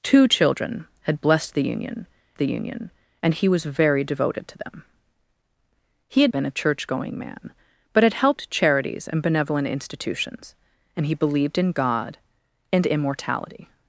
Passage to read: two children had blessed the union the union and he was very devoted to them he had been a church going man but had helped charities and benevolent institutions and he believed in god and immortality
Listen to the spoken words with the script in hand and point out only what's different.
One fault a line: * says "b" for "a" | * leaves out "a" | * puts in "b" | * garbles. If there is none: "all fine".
all fine